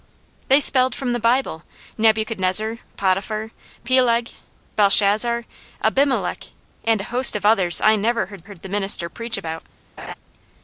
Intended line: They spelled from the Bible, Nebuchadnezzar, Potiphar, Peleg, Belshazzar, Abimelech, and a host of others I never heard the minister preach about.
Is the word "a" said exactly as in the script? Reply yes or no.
yes